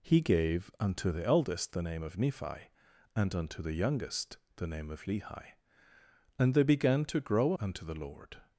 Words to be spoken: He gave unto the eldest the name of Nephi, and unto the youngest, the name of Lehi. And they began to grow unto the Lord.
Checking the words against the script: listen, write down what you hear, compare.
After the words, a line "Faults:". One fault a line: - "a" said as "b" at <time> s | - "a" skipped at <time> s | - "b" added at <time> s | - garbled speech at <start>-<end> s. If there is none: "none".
He gave unto the eldest the name of Nephi, and unto the youngest, the name of Lehi. And they began to grow unto the Lord.
Faults:
none